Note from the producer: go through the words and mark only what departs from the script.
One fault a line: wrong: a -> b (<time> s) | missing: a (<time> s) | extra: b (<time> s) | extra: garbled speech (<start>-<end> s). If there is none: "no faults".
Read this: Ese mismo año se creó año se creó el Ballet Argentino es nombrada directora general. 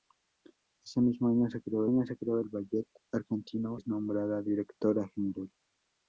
no faults